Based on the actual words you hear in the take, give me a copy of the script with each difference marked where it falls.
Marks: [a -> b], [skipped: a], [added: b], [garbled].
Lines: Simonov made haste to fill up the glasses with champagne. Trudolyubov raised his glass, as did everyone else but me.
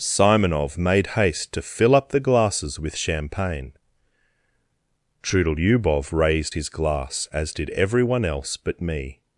Simonov made haste to fill up the glasses with champagne. Trudolyubov raised his glass, as did everyone else but me.